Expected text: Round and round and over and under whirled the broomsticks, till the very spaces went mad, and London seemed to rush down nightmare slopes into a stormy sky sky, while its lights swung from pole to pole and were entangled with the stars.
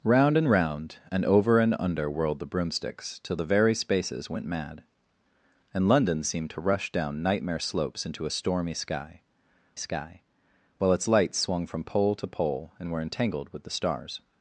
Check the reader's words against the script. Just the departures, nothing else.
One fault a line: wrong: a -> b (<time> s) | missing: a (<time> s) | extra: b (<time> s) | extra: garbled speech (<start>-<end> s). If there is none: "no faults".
no faults